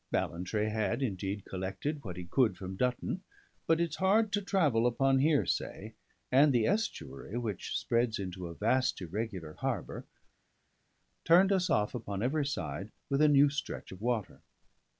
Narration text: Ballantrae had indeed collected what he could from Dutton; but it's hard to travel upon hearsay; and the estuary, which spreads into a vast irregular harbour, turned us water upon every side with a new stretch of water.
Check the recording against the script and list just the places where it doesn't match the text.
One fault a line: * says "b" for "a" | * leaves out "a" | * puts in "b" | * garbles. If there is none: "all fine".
* says "off" for "water"